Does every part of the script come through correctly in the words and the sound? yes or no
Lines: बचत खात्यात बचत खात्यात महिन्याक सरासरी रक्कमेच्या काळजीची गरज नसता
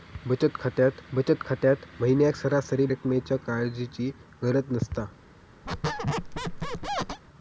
no